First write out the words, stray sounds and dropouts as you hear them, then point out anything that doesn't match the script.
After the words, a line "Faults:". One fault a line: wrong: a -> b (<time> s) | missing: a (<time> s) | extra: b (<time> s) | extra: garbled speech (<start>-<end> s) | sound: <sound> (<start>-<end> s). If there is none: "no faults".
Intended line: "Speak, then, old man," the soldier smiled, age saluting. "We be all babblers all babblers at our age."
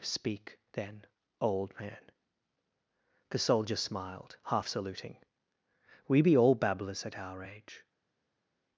"Speak, then, old man," the soldier smiled, half saluting. "We be all babblers at our age."
Faults:
wrong: age -> half (4.5 s)
missing: all babblers (7.0 s)